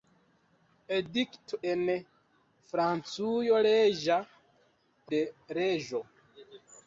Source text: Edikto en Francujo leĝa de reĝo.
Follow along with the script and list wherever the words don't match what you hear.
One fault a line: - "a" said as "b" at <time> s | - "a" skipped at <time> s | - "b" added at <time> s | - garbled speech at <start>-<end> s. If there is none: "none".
none